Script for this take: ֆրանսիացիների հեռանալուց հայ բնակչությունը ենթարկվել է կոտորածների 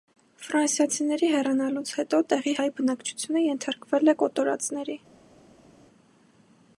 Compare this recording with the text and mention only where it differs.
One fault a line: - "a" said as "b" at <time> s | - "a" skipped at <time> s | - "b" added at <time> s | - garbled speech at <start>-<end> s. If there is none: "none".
- "հետո տեղի" added at 2.0 s